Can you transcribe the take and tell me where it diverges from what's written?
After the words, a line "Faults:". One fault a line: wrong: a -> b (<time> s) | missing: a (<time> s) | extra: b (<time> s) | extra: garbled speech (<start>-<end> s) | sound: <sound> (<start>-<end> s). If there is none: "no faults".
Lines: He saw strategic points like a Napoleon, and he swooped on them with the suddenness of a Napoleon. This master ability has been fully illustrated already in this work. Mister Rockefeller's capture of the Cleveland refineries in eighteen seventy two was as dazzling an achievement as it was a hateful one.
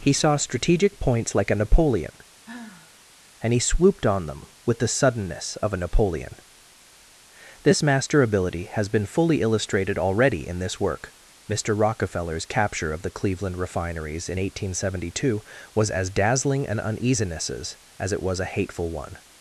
He saw strategic points like a Napoleon, and he swooped on them with the suddenness of a Napoleon. This master ability has been fully illustrated already in this work. Mister Rockefeller's capture of the Cleveland refineries in eighteen seventy two was as dazzling an uneasinesses as it was a hateful one.
Faults:
sound: sigh (2.4-3.0 s)
wrong: achievement -> uneasinesses (16.8 s)